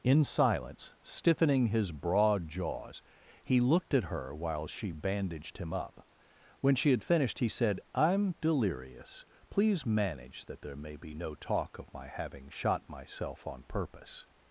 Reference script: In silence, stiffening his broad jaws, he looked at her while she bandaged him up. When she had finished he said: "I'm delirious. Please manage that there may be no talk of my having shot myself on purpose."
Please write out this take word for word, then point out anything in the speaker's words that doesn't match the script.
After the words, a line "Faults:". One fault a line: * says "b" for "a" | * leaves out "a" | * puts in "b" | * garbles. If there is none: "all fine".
In silence, stiffening his broad jaws, he looked at her while she bandaged him up. When she had finished he said: "I'm delirious. Please manage that there may be no talk of my having shot myself on purpose."
Faults:
all fine